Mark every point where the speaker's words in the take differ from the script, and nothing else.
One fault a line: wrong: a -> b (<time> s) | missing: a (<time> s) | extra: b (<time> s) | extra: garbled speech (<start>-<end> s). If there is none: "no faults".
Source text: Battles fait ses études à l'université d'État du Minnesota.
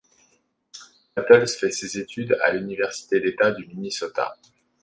no faults